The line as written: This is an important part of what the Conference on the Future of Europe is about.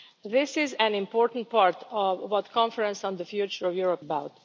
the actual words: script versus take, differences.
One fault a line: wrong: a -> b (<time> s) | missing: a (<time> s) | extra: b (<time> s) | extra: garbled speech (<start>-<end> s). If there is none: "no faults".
missing: is (4.0 s)